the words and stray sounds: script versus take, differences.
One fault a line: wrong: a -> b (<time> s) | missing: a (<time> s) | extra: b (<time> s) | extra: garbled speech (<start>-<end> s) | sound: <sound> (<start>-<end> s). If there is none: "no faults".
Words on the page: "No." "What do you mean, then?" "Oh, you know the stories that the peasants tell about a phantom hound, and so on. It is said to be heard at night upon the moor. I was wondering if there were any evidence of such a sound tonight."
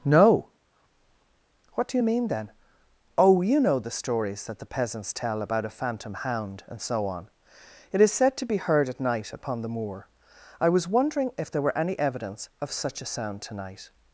no faults